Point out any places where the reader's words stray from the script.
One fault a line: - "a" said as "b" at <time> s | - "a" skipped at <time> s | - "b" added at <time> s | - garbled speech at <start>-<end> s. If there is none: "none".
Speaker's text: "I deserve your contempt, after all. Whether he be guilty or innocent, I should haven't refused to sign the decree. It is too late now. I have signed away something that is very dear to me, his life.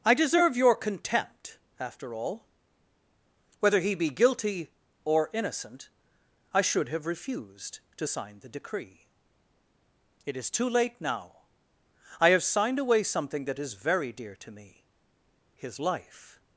- "haven't" said as "have" at 6.9 s